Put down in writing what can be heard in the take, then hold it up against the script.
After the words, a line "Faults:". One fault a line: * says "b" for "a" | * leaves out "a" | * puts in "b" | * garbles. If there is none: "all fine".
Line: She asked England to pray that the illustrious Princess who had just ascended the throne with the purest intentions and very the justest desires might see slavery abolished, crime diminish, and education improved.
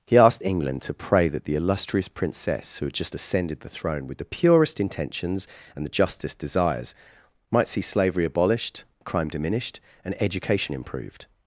He asked England to pray that the illustrious Princess who had just ascended the throne with the purest intentions and the justest desires might see slavery abolished, crime diminished, and education improved.
Faults:
* says "He" for "She"
* leaves out "very"
* says "diminished" for "diminish"